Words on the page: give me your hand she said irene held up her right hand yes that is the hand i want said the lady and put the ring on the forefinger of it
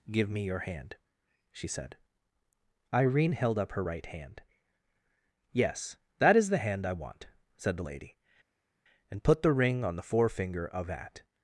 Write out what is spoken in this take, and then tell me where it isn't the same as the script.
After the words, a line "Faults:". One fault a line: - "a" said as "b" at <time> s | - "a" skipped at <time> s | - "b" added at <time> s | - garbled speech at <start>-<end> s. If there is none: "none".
give me your hand she said irene held up her right hand yes that is the hand i want said the lady and put the ring on the forefinger of at
Faults:
- "it" said as "at" at 10.9 s